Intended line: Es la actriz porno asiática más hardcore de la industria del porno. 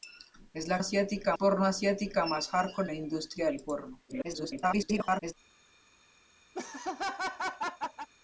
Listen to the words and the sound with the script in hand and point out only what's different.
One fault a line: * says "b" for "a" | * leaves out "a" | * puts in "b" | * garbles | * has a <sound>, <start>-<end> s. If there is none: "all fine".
* says "asiática" for "actriz"
* leaves out "de"
* garbles
* has a laugh, 6.5-8.1 s